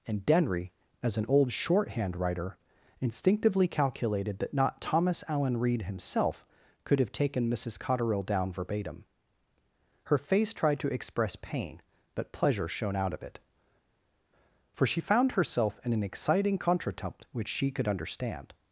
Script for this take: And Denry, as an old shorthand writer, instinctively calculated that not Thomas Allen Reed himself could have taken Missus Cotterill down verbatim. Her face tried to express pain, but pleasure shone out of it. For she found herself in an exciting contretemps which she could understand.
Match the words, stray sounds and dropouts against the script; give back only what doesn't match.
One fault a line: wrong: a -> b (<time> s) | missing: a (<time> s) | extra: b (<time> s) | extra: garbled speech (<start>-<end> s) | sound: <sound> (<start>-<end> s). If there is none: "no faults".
no faults